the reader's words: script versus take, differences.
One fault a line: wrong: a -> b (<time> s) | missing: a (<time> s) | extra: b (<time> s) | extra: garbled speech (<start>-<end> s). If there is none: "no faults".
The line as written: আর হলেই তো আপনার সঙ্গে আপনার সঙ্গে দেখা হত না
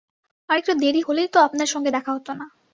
extra: একটু দেরি (0.6 s)
missing: আপনার সঙ্গে (1.9 s)